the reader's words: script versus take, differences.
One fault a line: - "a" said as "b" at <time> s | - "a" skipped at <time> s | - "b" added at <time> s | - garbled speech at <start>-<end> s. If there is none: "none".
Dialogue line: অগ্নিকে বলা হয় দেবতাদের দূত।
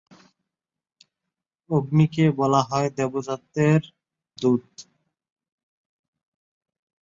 none